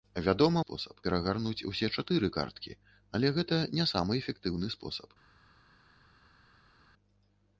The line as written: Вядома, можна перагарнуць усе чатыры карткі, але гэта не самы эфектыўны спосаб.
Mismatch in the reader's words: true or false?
true